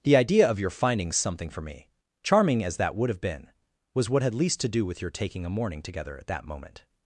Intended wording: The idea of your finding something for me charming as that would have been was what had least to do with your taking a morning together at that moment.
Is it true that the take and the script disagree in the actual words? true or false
false